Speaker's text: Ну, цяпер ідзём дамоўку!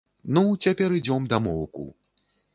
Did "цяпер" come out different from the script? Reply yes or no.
no